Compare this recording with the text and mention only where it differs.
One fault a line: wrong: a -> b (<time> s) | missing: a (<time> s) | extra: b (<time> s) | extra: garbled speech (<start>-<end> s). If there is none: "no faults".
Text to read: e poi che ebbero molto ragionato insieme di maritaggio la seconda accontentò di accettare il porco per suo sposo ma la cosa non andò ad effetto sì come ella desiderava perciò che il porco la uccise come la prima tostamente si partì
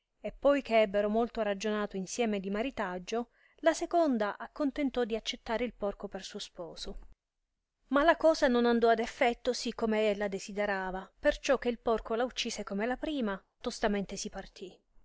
no faults